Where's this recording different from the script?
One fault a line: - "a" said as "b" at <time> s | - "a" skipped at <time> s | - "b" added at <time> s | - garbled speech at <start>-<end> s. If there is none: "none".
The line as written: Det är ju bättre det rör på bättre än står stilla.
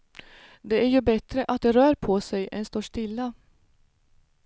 - "att" added at 1.5 s
- "bättre" said as "sig" at 2.2 s